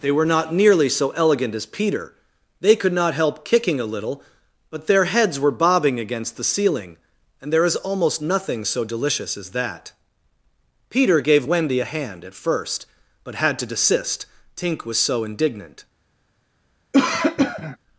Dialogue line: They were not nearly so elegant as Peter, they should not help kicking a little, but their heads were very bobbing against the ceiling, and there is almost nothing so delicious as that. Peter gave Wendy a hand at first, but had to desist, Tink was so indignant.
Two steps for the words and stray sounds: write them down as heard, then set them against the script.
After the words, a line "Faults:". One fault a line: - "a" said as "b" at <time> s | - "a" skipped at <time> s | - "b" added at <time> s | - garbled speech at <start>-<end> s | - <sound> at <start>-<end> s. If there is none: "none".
They were not nearly so elegant as Peter, they could not help kicking a little, but their heads were bobbing against the ceiling, and there is almost nothing so delicious as that. Peter gave Wendy a hand at first, but had to desist, Tink was so indignant.
Faults:
- "should" said as "could" at 2.8 s
- "very" skipped at 5.5 s
- cough at 16.9-17.8 s